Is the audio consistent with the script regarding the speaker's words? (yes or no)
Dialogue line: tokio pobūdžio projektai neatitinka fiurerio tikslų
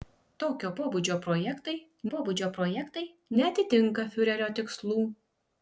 no